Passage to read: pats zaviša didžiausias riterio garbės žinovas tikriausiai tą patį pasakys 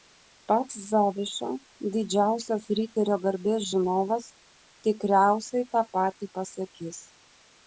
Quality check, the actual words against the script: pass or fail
pass